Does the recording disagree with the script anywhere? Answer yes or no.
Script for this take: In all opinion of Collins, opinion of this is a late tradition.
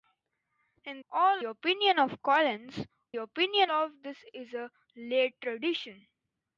no